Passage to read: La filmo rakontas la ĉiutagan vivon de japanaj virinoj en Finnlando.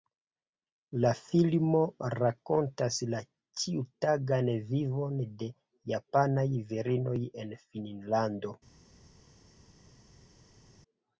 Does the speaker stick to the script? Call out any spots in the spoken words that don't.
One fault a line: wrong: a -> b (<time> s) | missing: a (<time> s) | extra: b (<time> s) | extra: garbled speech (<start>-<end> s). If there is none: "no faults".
no faults